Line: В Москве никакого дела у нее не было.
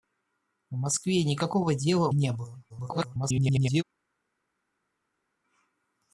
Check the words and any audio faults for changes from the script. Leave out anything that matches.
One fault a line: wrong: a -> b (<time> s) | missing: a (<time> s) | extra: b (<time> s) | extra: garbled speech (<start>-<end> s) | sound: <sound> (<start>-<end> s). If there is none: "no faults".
missing: у нее (2.1 s)
extra: garbled speech (2.7-3.8 s)